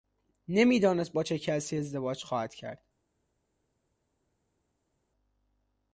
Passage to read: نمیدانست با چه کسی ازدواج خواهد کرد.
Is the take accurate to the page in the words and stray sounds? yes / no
yes